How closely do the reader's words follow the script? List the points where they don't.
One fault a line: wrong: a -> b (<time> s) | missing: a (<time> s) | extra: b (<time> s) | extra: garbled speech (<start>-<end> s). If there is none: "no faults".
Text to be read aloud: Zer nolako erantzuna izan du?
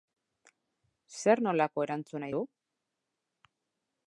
missing: izan (2.3 s)